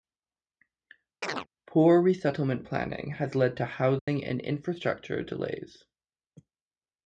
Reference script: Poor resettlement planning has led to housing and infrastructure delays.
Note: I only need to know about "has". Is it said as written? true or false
true